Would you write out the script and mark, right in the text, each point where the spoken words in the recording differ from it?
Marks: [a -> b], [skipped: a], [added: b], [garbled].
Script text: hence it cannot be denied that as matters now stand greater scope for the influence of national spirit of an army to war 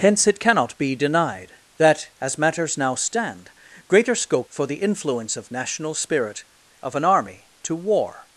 hence it cannot be denied that as matters now stand greater scope for the influence of national spirit of an army to war